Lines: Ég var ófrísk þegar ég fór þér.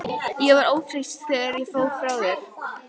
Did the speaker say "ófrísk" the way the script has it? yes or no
yes